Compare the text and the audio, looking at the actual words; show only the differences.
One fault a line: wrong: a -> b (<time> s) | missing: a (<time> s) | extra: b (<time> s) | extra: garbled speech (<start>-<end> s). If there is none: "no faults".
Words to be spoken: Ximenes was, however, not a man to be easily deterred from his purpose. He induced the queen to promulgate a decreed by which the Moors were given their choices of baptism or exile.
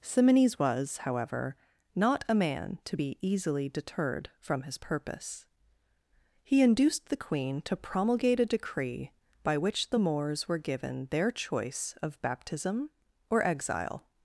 wrong: decreed -> decree (8.4 s)
wrong: choices -> choice (11.3 s)